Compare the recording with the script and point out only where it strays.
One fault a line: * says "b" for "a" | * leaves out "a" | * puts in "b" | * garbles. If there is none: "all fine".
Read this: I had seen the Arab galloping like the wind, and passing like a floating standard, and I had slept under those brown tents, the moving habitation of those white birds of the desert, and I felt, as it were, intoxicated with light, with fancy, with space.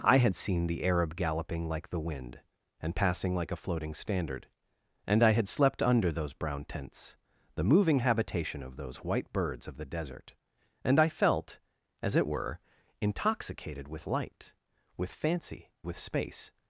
all fine